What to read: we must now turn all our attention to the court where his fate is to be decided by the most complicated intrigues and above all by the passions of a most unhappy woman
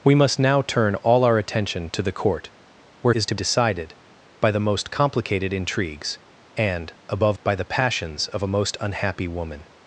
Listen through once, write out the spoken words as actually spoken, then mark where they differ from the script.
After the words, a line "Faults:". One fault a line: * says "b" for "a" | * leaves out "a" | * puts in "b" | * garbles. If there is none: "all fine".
we must now turn all our attention to the court where is to decided by the most complicated intrigues and above by the passions of a most unhappy woman
Faults:
* leaves out "his fate"
* leaves out "be"
* leaves out "all"